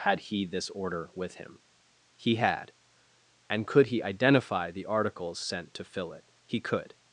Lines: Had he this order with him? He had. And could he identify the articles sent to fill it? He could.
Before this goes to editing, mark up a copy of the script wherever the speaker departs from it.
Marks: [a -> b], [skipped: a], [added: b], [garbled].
Had he this order with him? He had. And could he identify the articles sent to fill it? He could.